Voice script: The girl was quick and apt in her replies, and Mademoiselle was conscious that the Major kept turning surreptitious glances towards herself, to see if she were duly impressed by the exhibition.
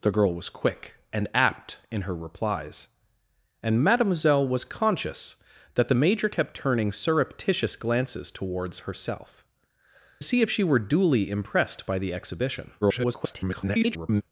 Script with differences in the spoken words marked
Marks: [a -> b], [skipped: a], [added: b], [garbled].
The girl was quick and apt in her replies, and Mademoiselle was conscious that the Major kept turning surreptitious glances towards herself, [skipped: to] see if she were duly impressed by the exhibition. [garbled]